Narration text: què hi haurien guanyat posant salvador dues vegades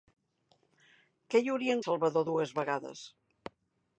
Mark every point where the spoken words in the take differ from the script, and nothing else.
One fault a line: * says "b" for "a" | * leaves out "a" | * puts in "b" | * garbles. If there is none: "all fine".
* leaves out "guanyat posant"